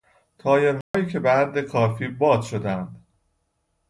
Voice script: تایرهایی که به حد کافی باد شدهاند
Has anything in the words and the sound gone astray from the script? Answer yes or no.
yes